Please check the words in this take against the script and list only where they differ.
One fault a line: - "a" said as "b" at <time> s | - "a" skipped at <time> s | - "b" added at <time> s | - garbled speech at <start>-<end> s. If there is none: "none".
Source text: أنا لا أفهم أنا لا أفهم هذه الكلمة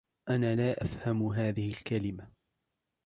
- "أنا لا أفهم" skipped at 1.3 s